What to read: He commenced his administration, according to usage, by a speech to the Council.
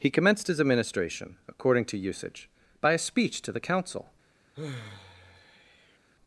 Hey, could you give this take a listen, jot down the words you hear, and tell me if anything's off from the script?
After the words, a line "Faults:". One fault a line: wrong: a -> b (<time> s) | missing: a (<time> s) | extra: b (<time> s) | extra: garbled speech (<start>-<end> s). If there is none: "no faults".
He commenced his administration, according to usage, by a speech to the Council.
Faults:
no faults